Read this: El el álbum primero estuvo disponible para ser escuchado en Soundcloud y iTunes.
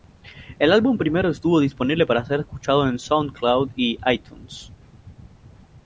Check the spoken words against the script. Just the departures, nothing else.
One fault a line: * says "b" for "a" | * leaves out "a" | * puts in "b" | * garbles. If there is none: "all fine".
* leaves out "el"